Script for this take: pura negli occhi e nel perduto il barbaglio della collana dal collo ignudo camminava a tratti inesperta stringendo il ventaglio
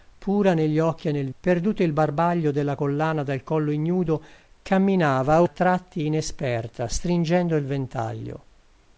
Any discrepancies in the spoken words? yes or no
no